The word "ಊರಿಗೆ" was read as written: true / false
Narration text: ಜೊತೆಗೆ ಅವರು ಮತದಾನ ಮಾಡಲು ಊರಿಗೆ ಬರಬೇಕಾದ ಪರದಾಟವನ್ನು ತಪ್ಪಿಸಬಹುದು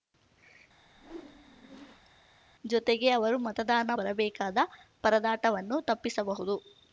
false